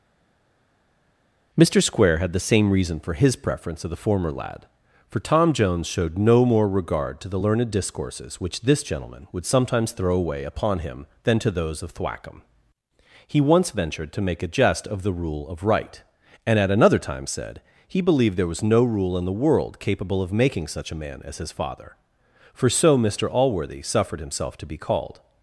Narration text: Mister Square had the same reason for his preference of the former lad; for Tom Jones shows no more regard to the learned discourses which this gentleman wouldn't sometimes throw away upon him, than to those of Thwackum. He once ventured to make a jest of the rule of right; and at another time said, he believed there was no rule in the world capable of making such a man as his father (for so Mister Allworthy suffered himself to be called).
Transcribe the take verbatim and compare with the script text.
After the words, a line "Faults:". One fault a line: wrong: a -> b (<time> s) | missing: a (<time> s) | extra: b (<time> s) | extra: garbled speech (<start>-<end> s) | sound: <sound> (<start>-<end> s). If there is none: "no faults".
Mister Square had the same reason for his preference of the former lad; for Tom Jones showed no more regard to the learned discourses which this gentleman would sometimes throw away upon him, than to those of Thwackum. He once ventured to make a jest of the rule of right; and at another time said, he believed there was no rule in the world capable of making such a man as his father (for so Mister Allworthy suffered himself to be called).
Faults:
wrong: shows -> showed (5.9 s)
wrong: wouldn't -> would (9.3 s)